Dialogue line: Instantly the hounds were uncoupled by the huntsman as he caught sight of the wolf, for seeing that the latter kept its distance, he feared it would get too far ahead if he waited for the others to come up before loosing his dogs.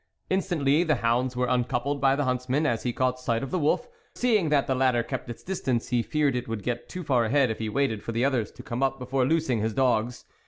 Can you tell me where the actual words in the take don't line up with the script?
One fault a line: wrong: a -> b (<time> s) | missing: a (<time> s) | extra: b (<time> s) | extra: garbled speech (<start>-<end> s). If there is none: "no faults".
missing: for (3.9 s)